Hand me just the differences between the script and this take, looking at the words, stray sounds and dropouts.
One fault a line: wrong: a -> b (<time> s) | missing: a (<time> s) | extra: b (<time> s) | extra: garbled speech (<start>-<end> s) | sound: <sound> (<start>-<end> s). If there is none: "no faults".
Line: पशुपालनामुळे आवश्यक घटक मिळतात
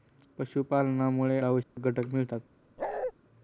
sound: dropout (1.6-1.8 s)
sound: bark (2.8-3.1 s)